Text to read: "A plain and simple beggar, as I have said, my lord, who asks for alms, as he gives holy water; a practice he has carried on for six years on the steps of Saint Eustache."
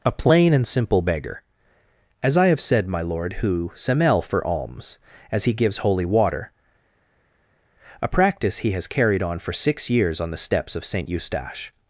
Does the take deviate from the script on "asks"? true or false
true